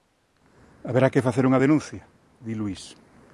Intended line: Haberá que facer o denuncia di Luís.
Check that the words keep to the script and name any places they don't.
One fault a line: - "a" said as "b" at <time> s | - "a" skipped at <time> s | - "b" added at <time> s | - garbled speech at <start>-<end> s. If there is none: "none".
- "o" said as "unha" at 1.4 s